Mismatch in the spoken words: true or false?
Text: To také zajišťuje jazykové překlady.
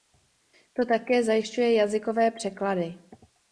false